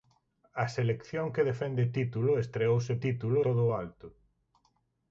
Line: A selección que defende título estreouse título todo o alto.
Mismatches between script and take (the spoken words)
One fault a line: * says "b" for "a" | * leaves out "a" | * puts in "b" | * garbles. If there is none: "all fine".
all fine